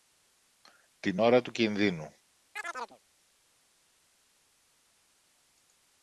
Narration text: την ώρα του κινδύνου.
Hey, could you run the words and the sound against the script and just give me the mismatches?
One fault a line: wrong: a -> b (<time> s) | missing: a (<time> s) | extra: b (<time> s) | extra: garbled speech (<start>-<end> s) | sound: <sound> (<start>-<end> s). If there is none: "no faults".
sound: chirp (2.6-3.0 s)